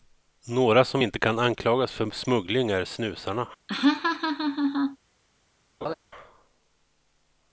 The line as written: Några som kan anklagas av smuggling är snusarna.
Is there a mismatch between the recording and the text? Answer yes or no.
yes